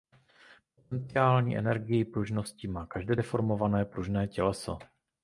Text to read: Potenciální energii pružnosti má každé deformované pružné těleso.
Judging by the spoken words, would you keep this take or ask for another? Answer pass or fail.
pass